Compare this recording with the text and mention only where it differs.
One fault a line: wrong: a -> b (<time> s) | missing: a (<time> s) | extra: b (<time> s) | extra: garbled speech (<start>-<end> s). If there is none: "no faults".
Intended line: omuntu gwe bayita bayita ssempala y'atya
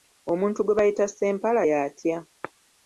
missing: bayita (1.1 s)